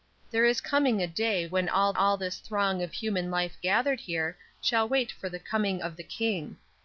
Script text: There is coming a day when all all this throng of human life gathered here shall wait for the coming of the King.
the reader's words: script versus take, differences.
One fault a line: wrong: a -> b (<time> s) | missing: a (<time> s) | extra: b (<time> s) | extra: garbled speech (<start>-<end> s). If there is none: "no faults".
no faults